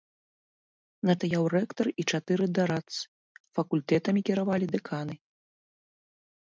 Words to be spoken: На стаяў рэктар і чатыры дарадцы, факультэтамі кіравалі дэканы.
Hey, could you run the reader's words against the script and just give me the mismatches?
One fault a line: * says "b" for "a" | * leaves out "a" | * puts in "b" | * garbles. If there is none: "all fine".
all fine